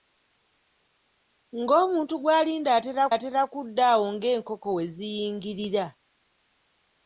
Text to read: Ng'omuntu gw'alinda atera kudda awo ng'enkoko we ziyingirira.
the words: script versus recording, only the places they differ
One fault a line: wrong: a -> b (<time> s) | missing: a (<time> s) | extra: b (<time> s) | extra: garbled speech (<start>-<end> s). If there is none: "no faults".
extra: atera (3.1 s)